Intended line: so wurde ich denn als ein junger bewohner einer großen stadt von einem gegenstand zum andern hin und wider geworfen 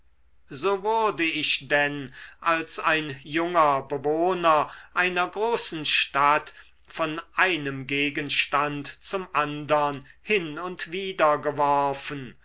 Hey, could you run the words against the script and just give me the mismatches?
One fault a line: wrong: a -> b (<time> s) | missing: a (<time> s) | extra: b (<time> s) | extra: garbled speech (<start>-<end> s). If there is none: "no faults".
no faults